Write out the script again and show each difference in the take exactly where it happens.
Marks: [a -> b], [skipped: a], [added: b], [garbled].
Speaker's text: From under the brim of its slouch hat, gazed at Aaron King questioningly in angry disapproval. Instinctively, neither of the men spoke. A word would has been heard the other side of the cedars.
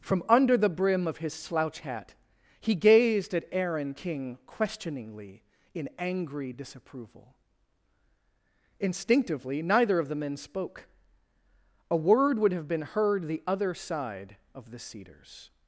From under the brim of [its -> his] slouch hat, [added: he] gazed at Aaron King questioningly in angry disapproval. Instinctively, neither of the men spoke. A word would [has -> have] been heard the other side of the cedars.